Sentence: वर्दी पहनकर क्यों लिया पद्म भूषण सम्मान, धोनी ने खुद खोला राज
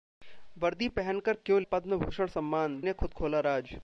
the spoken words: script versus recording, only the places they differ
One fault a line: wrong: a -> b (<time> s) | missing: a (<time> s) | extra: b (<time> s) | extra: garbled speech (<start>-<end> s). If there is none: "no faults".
missing: लिया (1.6 s)
missing: धोनी (2.8 s)